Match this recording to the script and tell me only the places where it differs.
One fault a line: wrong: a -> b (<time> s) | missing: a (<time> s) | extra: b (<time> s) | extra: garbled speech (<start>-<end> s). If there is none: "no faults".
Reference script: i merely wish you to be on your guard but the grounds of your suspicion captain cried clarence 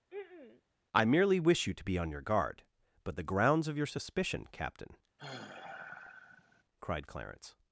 no faults